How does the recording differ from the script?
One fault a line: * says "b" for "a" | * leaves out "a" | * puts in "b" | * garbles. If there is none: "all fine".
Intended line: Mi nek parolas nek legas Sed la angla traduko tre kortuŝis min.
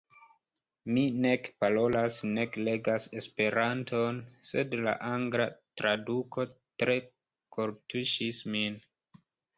* puts in "Esperanton"